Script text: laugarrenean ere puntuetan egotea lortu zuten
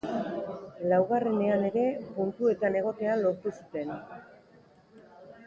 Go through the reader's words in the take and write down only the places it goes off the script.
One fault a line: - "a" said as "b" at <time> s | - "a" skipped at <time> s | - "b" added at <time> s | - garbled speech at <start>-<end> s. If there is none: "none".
none